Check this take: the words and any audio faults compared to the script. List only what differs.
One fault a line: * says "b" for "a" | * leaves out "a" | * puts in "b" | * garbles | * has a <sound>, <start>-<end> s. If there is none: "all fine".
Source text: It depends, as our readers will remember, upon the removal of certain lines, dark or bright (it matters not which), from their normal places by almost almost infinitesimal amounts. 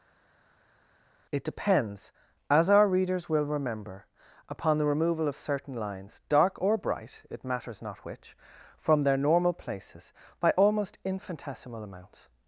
* leaves out "almost"